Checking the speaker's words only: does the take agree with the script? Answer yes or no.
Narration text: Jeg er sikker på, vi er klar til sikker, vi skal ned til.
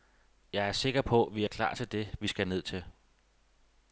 no